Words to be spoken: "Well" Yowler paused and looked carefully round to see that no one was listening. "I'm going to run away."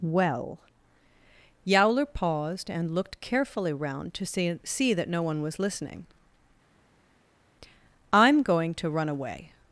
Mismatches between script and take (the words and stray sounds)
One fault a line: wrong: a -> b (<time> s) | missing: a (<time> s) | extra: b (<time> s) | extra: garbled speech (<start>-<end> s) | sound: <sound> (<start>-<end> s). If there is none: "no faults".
extra: see (4.6 s)